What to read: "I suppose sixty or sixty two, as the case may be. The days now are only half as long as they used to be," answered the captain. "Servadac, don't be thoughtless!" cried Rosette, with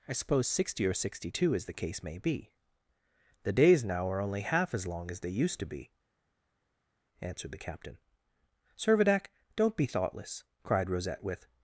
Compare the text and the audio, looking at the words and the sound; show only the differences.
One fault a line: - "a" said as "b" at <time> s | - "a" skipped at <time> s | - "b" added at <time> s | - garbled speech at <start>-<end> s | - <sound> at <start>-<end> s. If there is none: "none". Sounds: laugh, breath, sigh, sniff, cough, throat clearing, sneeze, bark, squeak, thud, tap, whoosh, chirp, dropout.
none